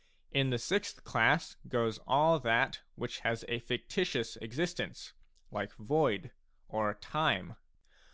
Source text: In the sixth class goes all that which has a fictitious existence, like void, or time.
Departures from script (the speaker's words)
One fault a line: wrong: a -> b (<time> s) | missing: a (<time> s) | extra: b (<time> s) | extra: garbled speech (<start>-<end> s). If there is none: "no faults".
no faults